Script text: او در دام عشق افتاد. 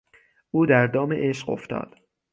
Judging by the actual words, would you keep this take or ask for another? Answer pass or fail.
pass